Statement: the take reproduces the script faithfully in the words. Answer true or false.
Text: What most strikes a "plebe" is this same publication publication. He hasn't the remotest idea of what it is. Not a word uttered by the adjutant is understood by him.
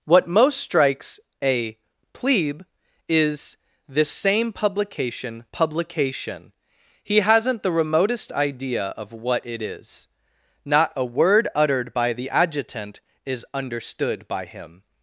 true